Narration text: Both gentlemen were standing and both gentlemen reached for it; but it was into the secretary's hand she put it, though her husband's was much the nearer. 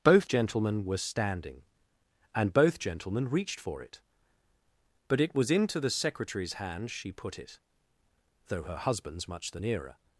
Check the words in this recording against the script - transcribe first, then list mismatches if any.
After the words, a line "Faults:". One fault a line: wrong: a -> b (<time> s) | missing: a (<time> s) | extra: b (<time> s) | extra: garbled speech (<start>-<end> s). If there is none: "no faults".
Both gentlemen were standing and both gentlemen reached for it; but it was into the secretary's hand she put it, though her husband's much the nearer.
Faults:
missing: was (9.3 s)